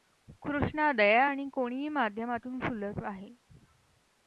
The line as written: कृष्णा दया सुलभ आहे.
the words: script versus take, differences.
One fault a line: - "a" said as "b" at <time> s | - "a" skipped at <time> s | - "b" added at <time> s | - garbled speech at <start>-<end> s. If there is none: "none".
- "आणि कोणीही माध्यमातून" added at 1.2 s